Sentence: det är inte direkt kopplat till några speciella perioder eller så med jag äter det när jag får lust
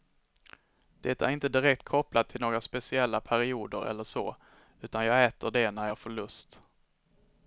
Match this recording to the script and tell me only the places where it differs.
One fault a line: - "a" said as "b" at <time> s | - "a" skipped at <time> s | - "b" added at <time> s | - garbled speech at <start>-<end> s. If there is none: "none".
- "med" said as "utan" at 4.8 s